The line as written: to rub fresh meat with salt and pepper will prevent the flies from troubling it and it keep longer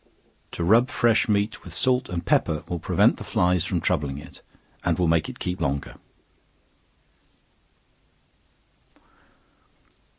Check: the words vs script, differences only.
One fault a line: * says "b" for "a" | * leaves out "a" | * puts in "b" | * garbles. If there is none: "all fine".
* puts in "will make"